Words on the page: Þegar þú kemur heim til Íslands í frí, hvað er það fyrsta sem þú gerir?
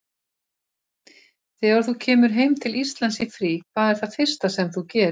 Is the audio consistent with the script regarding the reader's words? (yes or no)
yes